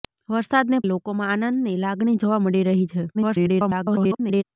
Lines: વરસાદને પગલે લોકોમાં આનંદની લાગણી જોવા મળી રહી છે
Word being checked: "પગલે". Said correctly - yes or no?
no